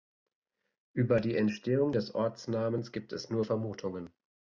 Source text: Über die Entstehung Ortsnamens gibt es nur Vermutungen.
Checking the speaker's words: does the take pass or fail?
fail